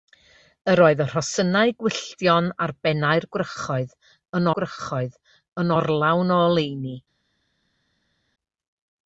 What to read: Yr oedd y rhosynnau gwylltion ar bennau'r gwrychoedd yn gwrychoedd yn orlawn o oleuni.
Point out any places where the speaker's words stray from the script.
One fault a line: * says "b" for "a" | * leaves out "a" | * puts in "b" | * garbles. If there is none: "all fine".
all fine